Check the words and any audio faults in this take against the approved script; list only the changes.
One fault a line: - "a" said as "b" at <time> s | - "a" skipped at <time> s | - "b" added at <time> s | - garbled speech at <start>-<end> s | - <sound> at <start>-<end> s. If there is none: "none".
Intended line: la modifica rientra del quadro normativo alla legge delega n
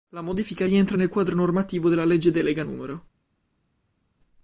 - "del" said as "nel" at 0.9 s
- "alla" said as "della" at 1.9 s